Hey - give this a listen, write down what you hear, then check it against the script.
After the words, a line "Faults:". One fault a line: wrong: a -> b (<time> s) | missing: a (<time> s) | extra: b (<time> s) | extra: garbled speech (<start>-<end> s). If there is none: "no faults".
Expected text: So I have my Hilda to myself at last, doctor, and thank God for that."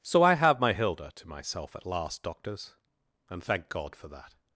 So I have my Hilda to myself at last, doctors, and thank God for that."
Faults:
wrong: doctor -> doctors (2.2 s)